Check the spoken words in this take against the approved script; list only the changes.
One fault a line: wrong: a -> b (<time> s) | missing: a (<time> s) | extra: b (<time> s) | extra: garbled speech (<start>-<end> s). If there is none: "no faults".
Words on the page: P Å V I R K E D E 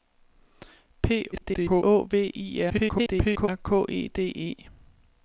extra: garbled speech (1.3-1.8 s)
extra: garbled speech (2.7-3.5 s)